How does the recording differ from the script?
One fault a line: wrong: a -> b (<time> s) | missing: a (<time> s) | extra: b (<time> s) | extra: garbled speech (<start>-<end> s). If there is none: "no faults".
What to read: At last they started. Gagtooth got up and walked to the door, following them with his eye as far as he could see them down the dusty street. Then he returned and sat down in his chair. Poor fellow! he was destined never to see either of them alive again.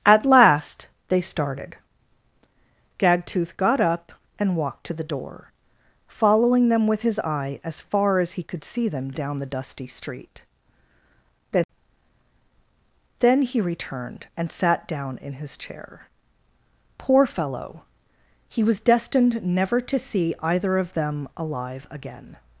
extra: Then (13.2 s)